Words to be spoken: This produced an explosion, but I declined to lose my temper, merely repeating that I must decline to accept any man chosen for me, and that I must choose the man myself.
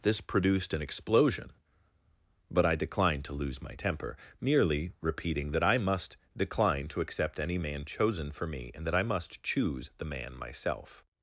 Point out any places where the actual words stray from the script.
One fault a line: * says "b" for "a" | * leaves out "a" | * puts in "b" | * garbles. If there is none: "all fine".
all fine